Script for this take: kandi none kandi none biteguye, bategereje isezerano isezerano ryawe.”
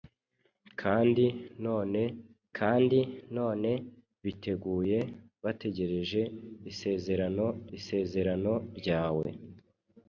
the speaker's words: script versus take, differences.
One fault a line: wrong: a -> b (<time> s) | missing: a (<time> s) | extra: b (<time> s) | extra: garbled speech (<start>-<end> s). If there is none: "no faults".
no faults